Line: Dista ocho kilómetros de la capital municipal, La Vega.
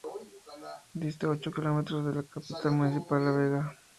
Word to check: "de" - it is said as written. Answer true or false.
true